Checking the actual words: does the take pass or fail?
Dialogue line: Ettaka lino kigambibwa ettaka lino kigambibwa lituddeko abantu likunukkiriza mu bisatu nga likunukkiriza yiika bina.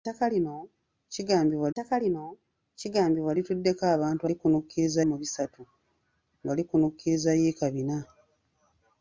pass